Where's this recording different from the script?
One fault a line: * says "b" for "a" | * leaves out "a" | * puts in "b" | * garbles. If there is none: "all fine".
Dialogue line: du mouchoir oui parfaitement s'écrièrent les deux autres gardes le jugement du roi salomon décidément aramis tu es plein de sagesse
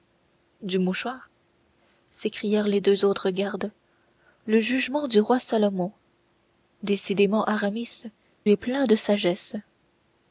* leaves out "oui parfaitement"
* leaves out "tu"